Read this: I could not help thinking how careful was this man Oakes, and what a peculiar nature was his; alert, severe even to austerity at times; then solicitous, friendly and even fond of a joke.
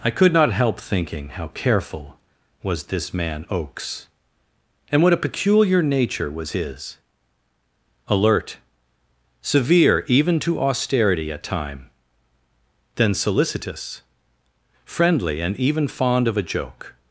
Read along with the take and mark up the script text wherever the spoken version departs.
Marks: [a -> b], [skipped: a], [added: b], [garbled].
I could not help thinking how careful was this man Oakes, and what a peculiar nature was his; alert, severe even to austerity at [times; -> time] then solicitous, friendly and even fond of a joke.